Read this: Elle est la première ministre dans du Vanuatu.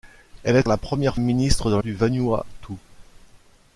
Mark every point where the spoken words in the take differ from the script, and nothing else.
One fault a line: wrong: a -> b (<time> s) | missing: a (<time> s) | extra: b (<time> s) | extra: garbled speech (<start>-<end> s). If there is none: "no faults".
no faults